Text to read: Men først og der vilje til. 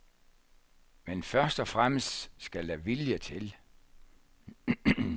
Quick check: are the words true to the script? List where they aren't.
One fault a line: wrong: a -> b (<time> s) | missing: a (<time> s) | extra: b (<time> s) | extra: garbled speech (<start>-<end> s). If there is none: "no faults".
extra: fremmest skal (1.7 s)